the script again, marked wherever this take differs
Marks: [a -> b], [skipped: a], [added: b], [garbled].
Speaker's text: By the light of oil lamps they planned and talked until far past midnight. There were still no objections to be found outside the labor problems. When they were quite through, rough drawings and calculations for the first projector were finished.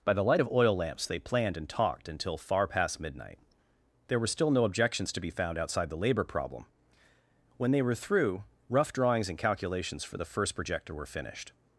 By the light of oil lamps they planned and talked until far past midnight. There were still no objections to be found outside the labor [problems. -> problem] When they were [skipped: quite] through, rough drawings and calculations for the first projector were finished.